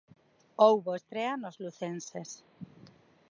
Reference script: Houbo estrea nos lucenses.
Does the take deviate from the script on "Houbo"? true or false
false